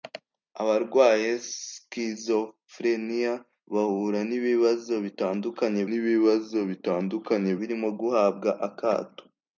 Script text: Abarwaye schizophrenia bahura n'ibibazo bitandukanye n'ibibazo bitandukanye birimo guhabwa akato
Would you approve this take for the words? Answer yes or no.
yes